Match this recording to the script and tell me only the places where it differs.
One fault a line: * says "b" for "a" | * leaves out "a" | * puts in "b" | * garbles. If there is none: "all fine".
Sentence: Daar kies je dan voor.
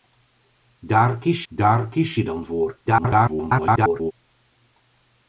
* puts in "daar kies"
* garbles